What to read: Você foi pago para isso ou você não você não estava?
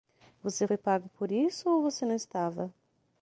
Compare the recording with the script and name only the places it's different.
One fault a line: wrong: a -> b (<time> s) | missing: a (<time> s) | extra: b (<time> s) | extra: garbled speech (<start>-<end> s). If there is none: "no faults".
wrong: para -> por (1.2 s)
missing: você não (2.1 s)